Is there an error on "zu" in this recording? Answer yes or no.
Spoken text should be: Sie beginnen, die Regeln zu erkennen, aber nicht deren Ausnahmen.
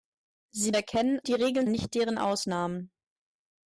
yes